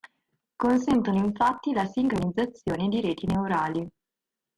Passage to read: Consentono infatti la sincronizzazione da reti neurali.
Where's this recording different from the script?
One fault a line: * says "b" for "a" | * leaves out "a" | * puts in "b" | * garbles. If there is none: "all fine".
* says "di" for "da"